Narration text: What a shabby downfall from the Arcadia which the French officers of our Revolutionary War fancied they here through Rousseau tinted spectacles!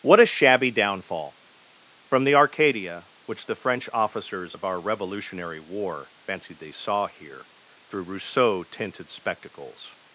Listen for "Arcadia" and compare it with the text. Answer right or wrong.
right